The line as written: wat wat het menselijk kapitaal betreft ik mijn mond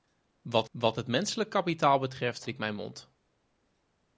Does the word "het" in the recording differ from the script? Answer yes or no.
no